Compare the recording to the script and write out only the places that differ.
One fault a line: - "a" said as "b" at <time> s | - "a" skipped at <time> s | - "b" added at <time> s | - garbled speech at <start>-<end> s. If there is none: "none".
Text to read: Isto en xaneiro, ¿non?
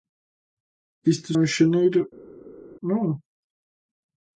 none